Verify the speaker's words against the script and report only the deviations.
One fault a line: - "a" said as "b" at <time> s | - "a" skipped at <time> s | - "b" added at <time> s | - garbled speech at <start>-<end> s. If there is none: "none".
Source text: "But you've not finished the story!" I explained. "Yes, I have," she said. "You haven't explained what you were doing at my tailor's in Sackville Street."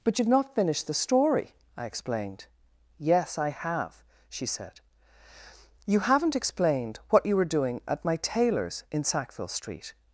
none